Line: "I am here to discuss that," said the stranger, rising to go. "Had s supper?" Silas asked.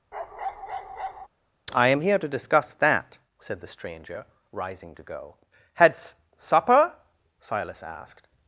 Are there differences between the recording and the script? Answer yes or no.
no